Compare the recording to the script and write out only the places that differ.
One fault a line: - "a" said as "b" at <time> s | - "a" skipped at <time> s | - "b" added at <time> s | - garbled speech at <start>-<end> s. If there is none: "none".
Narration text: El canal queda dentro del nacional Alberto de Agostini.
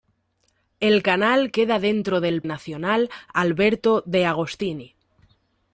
none